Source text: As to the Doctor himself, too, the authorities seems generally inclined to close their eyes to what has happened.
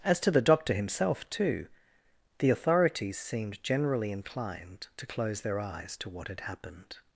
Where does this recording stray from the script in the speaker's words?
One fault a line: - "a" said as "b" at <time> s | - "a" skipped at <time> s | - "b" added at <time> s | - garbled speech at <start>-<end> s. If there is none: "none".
- "seems" said as "seemed" at 3.2 s
- "has" said as "had" at 6.3 s